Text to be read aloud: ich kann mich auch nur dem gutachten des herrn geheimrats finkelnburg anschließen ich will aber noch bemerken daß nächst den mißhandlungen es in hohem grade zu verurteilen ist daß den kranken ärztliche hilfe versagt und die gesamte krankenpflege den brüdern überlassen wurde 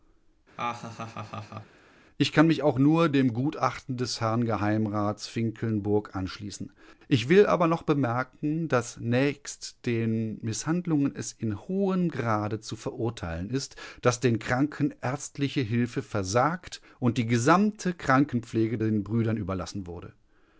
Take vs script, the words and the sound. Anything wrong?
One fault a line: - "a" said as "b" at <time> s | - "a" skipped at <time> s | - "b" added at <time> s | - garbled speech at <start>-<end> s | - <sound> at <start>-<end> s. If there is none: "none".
- laugh at 0.6-1.8 s